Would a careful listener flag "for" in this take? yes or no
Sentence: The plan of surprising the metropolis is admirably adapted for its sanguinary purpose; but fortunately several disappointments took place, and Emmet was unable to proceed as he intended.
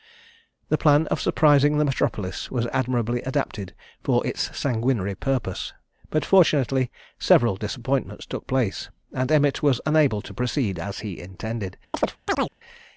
no